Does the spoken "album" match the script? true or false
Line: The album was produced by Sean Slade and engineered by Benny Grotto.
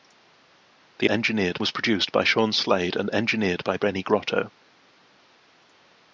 false